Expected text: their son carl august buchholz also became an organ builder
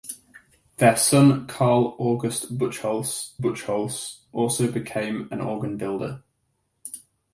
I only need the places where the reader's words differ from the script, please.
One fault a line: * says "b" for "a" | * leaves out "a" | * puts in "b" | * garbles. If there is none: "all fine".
* puts in "buchholz"